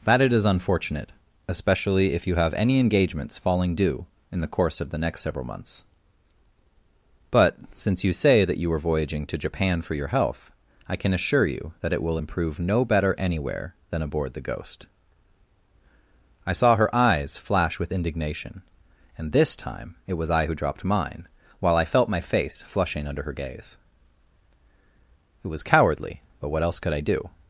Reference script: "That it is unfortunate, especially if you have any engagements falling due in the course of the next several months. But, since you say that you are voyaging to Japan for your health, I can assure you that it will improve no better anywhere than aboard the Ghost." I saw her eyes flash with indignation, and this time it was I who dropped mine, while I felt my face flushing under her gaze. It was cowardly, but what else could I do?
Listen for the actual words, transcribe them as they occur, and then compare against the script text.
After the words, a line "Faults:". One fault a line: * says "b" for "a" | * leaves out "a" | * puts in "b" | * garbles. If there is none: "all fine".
"That it is unfortunate, especially if you have any engagements falling due in the course of the next several months. But, since you say that you are voyaging to Japan for your health, I can assure you that it will improve no better anywhere than aboard the Ghost." I saw her eyes flash with indignation, and this time it was I who dropped mine, while I felt my face flushing under her gaze. It was cowardly, but what else could I do?
Faults:
all fine